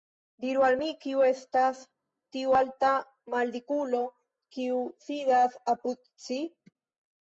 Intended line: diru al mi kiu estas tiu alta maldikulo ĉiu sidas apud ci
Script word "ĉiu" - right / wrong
wrong